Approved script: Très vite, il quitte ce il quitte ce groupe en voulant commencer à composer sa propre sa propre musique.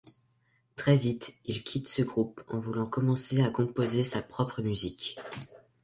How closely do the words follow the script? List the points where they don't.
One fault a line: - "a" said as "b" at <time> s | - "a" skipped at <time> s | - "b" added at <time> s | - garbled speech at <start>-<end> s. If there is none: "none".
- "il quitte ce" skipped at 2.0 s
- "sa propre" skipped at 4.6 s